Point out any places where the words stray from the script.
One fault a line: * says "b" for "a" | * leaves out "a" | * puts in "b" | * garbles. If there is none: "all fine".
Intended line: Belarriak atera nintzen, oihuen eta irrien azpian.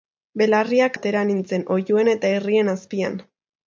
all fine